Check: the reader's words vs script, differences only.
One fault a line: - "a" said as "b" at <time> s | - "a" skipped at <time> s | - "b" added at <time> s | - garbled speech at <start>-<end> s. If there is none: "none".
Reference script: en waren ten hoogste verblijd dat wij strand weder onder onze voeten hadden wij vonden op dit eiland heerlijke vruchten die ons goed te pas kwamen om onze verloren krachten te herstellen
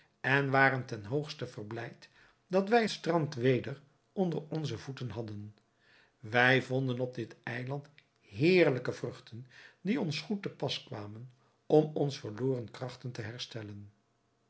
none